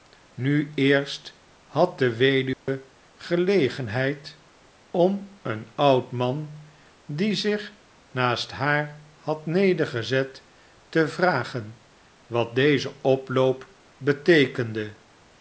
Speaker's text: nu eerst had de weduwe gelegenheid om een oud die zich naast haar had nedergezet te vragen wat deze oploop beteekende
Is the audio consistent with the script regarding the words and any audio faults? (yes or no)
no